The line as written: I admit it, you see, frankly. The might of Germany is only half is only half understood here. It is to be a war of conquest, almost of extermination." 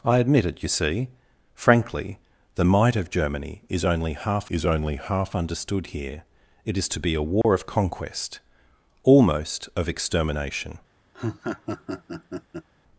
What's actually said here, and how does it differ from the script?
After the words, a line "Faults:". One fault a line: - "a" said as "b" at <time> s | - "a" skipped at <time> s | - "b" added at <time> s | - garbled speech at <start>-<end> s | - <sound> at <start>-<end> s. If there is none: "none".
I admit it, you see, frankly. The might of Germany is only half is only half understood here. It is to be a war of conquest, almost of extermination."
Faults:
- dropout at 7.4-7.4 s
- laugh at 11.1-12.7 s